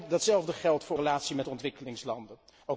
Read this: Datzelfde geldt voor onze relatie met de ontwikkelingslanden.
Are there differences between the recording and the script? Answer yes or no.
yes